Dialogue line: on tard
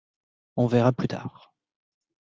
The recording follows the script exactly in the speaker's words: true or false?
false